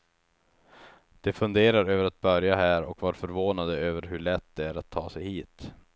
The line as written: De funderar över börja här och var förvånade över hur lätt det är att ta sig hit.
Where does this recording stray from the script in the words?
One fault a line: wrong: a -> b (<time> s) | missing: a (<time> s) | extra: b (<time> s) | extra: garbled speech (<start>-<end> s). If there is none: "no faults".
extra: att (2.0 s)